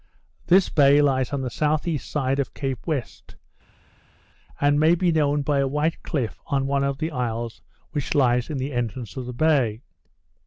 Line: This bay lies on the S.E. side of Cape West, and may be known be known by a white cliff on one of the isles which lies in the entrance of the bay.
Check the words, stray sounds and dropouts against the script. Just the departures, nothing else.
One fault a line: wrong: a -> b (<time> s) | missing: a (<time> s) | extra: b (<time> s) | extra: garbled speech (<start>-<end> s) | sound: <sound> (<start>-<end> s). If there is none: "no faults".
missing: be known (5.4 s)